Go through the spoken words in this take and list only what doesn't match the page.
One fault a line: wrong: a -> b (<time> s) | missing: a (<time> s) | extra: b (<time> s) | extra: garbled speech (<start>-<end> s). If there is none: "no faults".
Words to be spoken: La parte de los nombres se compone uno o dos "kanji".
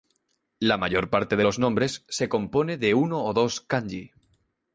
extra: mayor (0.8 s)
extra: de (2.8 s)